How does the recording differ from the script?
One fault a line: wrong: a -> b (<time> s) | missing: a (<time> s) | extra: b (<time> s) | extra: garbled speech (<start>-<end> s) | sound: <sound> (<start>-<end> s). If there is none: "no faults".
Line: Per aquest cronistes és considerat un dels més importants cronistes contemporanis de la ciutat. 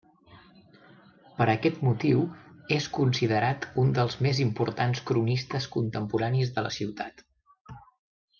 wrong: cronistes -> motiu (1.9 s)